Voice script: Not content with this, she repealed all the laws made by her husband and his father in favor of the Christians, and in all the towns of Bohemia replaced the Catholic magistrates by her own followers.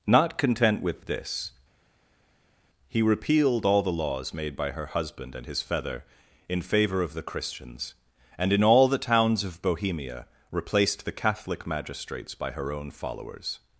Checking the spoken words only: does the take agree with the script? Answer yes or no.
no